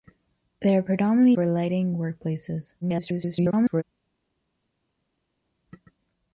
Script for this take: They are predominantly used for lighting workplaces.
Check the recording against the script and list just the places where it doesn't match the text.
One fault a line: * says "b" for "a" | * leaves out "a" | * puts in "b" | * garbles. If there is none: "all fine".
* leaves out "used"
* garbles